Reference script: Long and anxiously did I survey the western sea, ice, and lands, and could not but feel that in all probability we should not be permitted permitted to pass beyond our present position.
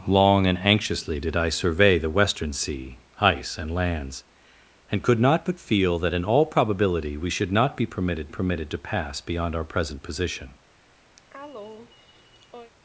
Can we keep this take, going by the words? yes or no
yes